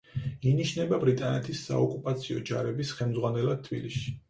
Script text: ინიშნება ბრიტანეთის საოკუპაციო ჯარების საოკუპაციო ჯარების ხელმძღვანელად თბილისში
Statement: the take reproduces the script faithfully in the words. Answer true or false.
false